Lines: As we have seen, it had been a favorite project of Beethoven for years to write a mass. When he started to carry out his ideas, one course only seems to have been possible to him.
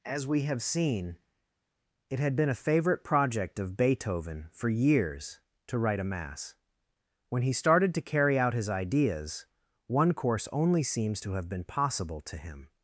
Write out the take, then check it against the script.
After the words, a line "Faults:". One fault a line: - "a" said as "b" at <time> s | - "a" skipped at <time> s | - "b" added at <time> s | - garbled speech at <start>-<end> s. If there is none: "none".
As we have seen, it had been a favorite project of Beethoven for years to write a mass. When he started to carry out his ideas, one course only seems to have been possible to him.
Faults:
none